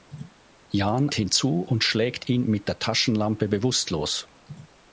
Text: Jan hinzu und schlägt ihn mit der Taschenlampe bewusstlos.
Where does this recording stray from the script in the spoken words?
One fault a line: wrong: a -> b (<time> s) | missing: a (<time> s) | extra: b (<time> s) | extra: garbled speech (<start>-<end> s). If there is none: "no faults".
no faults